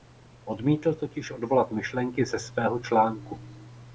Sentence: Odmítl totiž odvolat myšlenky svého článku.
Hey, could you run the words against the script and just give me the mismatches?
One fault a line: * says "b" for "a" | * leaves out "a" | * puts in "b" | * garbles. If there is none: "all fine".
* puts in "ze"